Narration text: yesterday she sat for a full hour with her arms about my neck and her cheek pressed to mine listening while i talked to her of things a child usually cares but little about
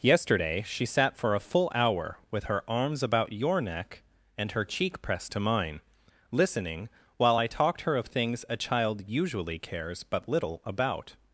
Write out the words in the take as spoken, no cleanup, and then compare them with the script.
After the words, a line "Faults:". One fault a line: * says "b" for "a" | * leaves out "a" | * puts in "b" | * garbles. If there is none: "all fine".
yesterday she sat for a full hour with her arms about your neck and her cheek pressed to mine listening while i talked her of things a child usually cares but little about
Faults:
* says "your" for "my"
* leaves out "to"